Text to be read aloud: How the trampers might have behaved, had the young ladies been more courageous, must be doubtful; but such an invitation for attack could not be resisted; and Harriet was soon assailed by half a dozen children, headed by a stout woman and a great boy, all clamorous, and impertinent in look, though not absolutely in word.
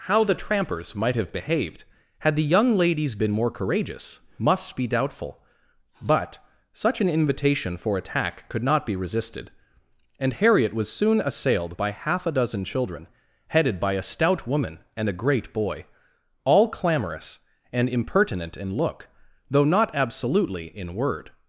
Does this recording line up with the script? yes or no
yes